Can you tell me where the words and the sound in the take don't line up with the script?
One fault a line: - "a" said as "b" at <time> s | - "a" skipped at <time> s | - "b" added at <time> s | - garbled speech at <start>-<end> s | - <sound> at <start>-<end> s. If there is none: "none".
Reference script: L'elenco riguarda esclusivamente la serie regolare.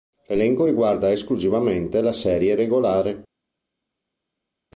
none